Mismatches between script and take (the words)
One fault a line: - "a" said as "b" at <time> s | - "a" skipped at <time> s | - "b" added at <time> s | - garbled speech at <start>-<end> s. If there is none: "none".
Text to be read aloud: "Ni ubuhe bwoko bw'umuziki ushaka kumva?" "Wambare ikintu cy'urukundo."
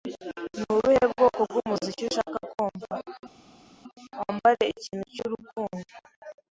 none